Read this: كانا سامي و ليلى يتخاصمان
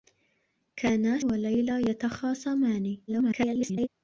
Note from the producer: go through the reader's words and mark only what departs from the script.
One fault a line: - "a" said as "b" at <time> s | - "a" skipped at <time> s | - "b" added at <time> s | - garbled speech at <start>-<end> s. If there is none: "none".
- "سامي" skipped at 1.2 s
- garbled speech at 3.1-3.9 s